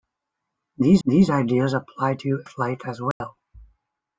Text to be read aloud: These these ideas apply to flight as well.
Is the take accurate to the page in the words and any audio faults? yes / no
no